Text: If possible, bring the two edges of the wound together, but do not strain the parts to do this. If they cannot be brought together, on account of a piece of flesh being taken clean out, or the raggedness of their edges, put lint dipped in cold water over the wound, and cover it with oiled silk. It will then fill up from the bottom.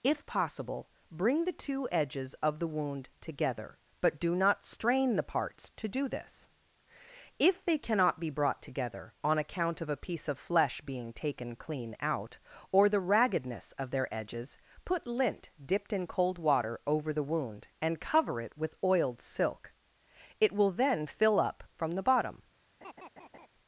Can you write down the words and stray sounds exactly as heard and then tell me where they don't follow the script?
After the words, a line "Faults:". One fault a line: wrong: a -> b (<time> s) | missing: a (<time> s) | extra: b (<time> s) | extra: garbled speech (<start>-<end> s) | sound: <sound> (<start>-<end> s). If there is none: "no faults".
If possible, bring the two edges of the wound together, but do not strain the parts to do this. If they cannot be brought together, on account of a piece of flesh being taken clean out, or the raggedness of their edges, put lint dipped in cold water over the wound, and cover it with oiled silk. It will then fill up from the bottom.
Faults:
sound: laugh (22.8-23.5 s)